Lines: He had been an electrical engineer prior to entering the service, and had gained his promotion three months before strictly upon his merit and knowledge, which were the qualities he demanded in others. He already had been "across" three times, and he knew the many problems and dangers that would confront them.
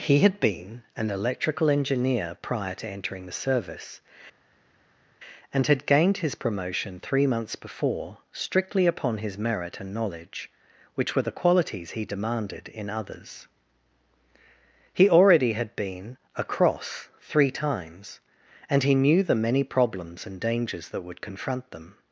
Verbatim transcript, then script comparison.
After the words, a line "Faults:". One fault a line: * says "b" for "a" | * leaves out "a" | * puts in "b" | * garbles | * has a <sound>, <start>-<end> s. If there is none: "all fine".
He had been an electrical engineer prior to entering the service, and had gained his promotion three months before strictly upon his merit and knowledge, which were the qualities he demanded in others. He already had been "across" three times, and he knew the many problems and dangers that would confront them.
Faults:
all fine